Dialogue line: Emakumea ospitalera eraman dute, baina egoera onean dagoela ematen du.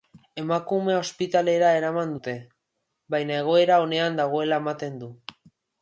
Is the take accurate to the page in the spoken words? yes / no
yes